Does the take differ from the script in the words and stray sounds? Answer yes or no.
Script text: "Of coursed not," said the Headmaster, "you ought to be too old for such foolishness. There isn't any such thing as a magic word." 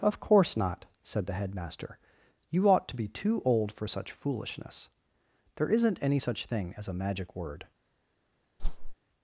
yes